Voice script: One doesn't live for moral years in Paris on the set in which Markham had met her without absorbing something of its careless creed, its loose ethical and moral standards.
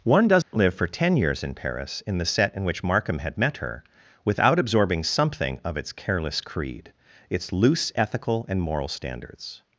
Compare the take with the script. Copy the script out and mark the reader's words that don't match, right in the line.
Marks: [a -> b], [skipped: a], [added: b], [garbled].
One doesn't live for [moral -> ten] years in Paris [on -> in] the set in which Markham had met her without absorbing something of its careless creed, its loose ethical and moral standards.